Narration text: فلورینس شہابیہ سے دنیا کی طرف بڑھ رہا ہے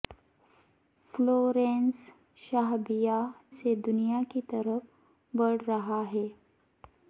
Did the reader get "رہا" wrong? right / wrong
right